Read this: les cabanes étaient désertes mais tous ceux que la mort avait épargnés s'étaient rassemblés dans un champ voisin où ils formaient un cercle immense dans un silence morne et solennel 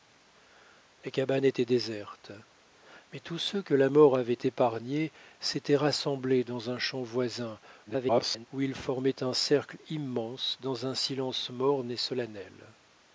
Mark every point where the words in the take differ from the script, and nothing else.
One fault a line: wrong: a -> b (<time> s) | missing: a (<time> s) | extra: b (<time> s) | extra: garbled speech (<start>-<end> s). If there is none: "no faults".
extra: garbled speech (7.9-8.5 s)